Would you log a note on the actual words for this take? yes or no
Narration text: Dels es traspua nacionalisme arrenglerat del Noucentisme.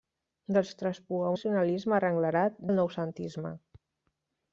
no